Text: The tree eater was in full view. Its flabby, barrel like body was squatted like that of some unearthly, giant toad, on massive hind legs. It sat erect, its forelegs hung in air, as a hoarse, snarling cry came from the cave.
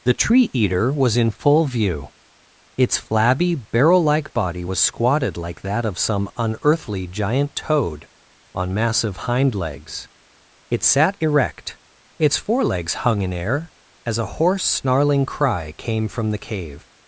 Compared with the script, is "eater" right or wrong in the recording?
right